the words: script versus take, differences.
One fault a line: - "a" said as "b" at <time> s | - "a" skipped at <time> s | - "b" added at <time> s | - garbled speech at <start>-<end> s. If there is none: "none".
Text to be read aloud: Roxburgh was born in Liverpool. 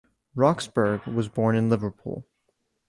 none